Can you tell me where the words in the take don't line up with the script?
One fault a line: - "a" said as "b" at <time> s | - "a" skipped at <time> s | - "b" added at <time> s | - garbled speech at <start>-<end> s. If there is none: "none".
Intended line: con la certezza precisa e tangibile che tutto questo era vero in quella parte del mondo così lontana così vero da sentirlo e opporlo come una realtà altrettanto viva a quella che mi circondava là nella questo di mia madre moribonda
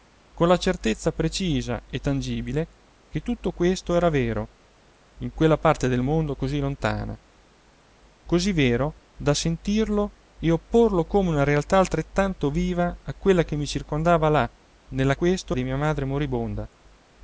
none